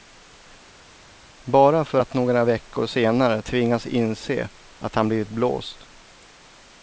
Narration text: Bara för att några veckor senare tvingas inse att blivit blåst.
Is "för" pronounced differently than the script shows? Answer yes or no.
no